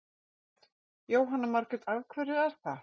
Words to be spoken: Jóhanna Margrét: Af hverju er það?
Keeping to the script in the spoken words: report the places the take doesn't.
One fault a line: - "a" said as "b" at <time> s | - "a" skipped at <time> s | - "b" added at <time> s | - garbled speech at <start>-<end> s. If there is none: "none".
none